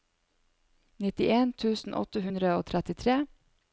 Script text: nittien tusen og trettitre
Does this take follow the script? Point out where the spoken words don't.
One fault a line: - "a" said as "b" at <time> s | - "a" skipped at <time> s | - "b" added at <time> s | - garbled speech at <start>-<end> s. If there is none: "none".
- "åtte hundre" added at 2.0 s